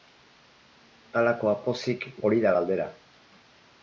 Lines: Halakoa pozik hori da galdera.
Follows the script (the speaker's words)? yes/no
yes